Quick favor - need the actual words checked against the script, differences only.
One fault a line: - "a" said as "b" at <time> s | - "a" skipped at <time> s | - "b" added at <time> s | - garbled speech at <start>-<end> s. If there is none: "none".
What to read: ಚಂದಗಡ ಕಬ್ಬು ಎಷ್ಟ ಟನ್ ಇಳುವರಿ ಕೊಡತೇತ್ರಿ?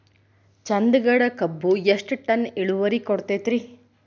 none